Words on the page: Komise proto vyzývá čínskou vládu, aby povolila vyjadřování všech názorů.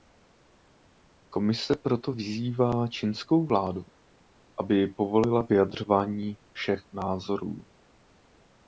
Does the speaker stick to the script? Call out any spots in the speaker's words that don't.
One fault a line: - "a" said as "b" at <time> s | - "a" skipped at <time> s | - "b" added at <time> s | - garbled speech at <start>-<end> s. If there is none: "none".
none